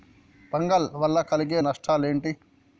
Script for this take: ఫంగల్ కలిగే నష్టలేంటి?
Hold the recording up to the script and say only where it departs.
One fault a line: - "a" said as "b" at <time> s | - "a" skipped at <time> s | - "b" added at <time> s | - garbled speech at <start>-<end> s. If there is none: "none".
- "వల్ల" added at 0.9 s